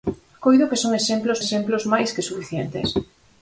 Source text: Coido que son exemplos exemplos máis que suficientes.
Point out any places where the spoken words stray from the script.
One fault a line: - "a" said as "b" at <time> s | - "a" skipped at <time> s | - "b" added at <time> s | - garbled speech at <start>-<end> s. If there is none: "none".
none